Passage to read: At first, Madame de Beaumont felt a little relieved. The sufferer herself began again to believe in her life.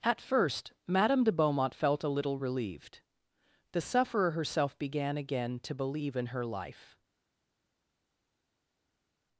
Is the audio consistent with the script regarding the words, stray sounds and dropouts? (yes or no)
yes